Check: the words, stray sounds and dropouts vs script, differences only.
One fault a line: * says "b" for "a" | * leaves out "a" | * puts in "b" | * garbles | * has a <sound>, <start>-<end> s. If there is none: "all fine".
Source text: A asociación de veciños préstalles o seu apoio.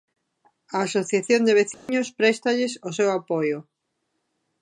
* has a dropout, 1.7-1.9 s